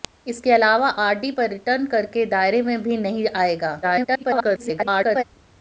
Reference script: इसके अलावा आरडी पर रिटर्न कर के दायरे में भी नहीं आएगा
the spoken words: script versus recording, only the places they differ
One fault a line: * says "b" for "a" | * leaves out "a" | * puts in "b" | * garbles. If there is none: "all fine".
* garbles